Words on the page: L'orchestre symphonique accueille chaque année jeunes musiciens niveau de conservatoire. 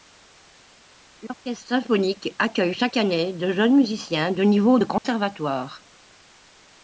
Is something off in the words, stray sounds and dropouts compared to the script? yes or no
yes